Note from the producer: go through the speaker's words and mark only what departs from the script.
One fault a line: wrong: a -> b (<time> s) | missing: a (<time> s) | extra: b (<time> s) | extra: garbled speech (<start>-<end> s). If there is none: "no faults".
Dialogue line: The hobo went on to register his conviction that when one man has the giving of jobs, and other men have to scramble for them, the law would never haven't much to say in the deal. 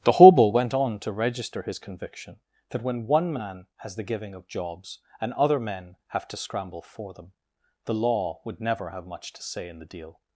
wrong: haven't -> have (8.9 s)